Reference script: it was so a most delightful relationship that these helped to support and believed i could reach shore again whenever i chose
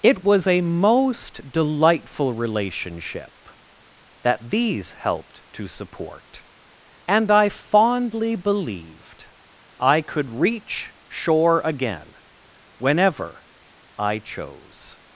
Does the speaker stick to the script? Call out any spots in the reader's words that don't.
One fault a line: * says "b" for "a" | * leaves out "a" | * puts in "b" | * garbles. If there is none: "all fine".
* leaves out "so"
* puts in "i fondly"